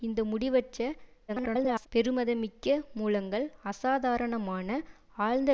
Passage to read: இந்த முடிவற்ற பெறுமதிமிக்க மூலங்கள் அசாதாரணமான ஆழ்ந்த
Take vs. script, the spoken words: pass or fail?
fail